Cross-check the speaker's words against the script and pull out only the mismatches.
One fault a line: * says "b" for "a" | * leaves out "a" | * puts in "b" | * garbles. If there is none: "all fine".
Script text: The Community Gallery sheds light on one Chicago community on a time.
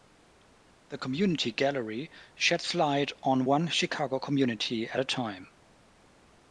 * says "at" for "on"